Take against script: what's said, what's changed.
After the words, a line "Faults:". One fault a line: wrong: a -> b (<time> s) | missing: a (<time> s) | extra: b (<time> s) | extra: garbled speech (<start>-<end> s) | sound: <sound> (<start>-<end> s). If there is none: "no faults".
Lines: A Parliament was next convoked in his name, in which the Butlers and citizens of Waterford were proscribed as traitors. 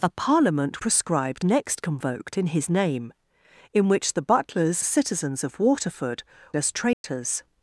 A Parliament proscribed next convoked in his name, in which the Butlers citizens of Waterford as traitors.
Faults:
wrong: was -> proscribed (0.8 s)
missing: and (4.8 s)
missing: were proscribed (6.2 s)
sound: dropout (6.9-7.0 s)